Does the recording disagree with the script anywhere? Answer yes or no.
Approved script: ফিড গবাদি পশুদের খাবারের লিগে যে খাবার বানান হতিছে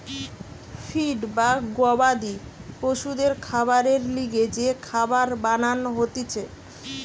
yes